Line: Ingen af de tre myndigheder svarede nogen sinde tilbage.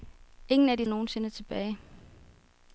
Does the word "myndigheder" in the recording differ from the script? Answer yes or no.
yes